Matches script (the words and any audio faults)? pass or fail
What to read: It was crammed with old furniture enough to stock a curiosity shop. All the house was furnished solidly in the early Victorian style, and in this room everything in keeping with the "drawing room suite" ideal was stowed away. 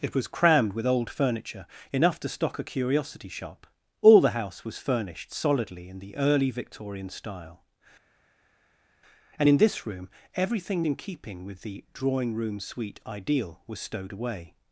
pass